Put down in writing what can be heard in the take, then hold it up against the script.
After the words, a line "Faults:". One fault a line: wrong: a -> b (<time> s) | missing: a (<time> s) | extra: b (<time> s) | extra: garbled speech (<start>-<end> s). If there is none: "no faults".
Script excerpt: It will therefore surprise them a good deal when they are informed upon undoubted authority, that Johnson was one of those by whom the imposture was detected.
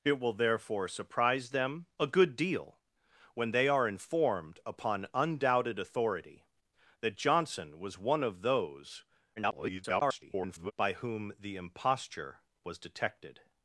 It will therefore surprise them a good deal when they are informed upon undoubted authority, that Johnson was one of those [garbled] by whom the imposture was detected.
Faults:
extra: garbled speech (9.4-10.7 s)